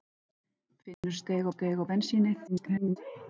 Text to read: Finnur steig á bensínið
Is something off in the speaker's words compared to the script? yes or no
yes